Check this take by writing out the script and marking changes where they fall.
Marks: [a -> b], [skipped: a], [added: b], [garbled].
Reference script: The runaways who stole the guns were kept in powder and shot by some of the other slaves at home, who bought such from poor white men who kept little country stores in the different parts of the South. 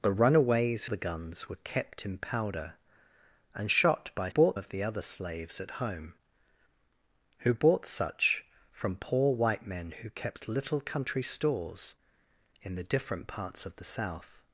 The runaways [skipped: who stole] the guns were kept in powder and shot by [some -> bought] of the other slaves at home, who bought such from poor white men who kept little country stores in the different parts of the South.